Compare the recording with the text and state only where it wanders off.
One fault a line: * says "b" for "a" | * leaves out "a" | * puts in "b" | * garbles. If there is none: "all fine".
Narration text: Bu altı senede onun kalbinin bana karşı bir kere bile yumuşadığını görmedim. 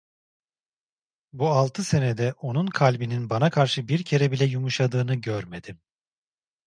all fine